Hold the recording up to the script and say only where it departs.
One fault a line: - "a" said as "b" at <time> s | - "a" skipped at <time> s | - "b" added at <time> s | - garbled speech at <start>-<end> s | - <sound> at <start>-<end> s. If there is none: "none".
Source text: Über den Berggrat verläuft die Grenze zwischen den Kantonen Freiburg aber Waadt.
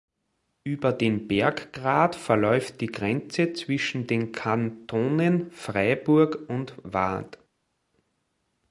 - "aber" said as "und" at 6.5 s